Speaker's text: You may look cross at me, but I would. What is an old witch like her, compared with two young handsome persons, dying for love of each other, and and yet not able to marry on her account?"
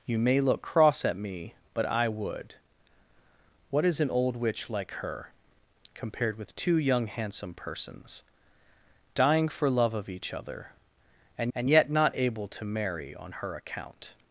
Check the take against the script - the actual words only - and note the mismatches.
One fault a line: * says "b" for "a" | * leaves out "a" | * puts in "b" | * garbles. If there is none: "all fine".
all fine